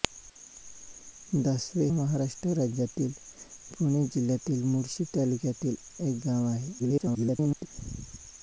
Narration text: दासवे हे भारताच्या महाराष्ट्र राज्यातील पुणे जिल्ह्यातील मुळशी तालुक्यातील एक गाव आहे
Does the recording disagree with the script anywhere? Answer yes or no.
yes